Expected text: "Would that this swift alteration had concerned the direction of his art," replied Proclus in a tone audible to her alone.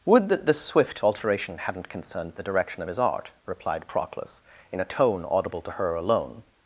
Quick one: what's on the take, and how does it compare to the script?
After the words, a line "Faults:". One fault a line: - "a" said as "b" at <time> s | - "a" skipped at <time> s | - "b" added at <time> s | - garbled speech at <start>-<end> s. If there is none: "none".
"Would that this swift alteration hadn't concerned the direction of his art," replied Proclus in a tone audible to her alone.
Faults:
- "had" said as "hadn't" at 1.6 s